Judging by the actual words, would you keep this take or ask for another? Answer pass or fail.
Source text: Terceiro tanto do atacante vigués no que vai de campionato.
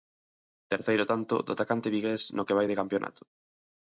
pass